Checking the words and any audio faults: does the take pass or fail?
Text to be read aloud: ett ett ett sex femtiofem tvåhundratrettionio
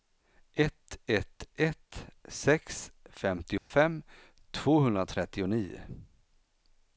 fail